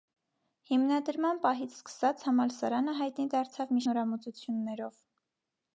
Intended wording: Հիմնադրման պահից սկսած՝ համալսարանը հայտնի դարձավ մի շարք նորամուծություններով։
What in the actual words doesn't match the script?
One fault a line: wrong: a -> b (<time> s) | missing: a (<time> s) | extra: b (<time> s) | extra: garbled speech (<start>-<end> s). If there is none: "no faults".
missing: շարք (3.8 s)